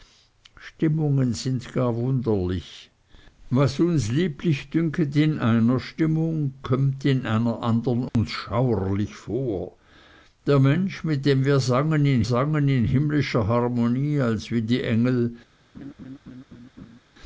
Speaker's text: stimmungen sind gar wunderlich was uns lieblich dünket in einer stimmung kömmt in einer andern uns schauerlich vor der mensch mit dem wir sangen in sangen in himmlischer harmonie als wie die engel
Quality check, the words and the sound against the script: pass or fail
fail